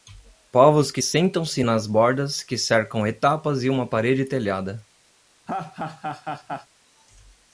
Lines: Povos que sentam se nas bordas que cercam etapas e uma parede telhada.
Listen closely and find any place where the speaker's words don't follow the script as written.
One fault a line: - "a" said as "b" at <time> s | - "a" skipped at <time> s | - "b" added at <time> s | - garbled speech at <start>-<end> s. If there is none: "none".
none